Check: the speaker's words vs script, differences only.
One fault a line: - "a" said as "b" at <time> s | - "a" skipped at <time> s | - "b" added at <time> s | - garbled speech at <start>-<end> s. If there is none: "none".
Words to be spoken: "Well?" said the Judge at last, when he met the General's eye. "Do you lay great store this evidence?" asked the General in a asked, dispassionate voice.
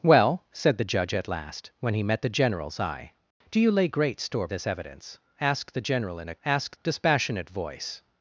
none